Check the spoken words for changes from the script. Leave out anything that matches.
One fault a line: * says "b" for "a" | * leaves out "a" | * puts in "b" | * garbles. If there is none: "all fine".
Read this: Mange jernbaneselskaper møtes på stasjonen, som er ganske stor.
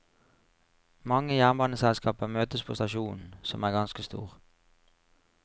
all fine